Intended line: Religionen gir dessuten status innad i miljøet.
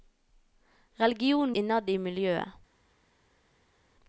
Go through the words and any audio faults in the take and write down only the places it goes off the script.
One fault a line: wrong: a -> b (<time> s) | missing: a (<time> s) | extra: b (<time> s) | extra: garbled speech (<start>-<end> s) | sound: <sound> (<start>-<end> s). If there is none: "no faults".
missing: gir dessuten status (1.6 s)